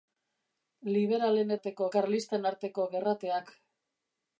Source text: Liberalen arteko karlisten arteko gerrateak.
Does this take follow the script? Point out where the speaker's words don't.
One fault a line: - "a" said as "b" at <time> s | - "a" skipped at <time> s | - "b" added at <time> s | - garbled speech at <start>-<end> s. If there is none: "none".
none